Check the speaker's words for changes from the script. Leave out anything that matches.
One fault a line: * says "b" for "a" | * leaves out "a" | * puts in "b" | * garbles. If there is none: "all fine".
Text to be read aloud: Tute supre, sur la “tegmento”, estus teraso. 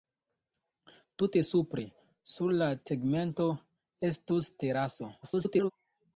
* garbles